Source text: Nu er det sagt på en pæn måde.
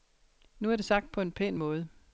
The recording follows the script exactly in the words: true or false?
true